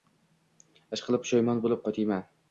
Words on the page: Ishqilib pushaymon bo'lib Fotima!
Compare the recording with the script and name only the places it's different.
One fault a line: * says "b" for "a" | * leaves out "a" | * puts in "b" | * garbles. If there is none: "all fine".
all fine